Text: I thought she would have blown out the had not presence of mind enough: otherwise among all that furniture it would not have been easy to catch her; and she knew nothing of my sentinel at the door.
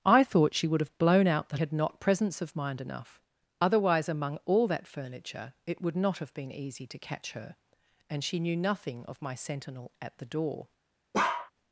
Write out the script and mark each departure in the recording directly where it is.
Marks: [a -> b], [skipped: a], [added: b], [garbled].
I thought she would have blown out the had not presence of mind enough: otherwise among all that furniture it would not have been easy to catch her; and she knew nothing of my sentinel at the door.